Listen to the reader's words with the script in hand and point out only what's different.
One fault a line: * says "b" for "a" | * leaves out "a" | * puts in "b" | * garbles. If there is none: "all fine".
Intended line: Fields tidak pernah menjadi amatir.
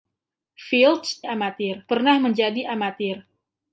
* says "amatir" for "tidak"